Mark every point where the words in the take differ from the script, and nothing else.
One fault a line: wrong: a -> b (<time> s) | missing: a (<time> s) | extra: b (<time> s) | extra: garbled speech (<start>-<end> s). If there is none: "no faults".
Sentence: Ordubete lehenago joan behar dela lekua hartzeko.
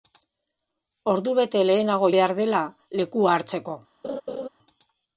missing: joan (2.1 s)